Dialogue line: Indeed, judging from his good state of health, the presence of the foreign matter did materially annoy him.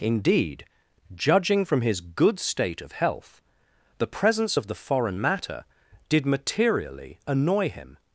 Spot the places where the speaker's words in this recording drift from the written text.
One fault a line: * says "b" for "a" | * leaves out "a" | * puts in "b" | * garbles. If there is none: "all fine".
all fine